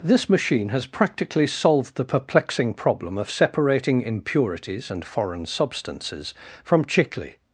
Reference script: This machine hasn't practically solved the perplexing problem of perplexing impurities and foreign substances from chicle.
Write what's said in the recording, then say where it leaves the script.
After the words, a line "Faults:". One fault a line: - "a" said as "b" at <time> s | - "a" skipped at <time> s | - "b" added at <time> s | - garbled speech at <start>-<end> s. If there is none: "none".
This machine has practically solved the perplexing problem of separating impurities and foreign substances from chicle.
Faults:
- "hasn't" said as "has" at 0.7 s
- "perplexing" said as "separating" at 3.3 s